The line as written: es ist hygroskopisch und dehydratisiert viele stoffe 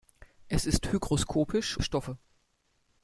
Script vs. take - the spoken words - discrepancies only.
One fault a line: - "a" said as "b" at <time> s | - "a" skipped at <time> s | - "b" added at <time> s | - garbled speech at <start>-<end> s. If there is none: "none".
- "und dehydratisiert viele" skipped at 1.8 s